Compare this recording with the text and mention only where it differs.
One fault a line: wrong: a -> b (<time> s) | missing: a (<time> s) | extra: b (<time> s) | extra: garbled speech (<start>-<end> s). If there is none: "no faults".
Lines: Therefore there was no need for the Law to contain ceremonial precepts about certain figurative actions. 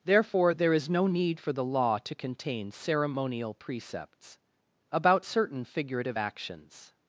wrong: was -> is (0.7 s)